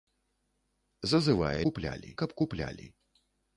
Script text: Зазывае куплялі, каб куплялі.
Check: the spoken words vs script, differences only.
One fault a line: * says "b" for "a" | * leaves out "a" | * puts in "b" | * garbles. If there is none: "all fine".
all fine